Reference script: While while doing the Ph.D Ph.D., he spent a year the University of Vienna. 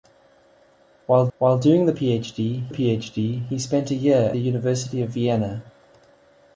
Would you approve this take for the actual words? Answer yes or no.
yes